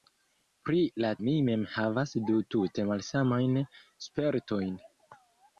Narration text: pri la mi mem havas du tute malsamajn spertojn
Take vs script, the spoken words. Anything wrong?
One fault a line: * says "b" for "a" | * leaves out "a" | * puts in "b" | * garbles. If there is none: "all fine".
all fine